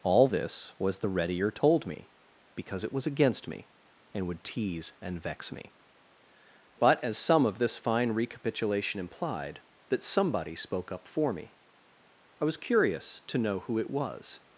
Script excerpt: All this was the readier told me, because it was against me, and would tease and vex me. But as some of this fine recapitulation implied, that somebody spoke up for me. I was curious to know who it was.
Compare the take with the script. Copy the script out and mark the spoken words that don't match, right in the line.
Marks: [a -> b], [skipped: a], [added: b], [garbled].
All this was the readier told me, because it was against me, and would tease and vex me. But as some of this fine recapitulation implied, that somebody spoke up for me. I was curious to know who it was.